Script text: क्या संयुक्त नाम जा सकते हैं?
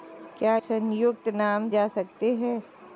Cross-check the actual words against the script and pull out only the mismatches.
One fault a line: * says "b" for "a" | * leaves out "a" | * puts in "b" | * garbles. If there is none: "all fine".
all fine